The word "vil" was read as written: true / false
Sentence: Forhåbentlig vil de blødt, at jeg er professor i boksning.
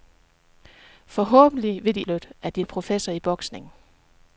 true